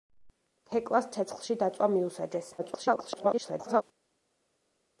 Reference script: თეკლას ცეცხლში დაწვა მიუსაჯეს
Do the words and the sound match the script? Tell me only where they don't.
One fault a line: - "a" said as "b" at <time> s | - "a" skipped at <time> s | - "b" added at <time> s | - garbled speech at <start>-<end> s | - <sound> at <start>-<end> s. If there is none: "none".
- garbled speech at 2.6-3.8 s